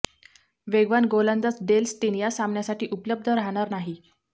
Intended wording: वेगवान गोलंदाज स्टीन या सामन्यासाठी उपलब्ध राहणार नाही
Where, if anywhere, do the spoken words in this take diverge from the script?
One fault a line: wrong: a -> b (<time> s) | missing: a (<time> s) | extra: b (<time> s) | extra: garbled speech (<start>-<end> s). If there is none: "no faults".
extra: डेल (1.7 s)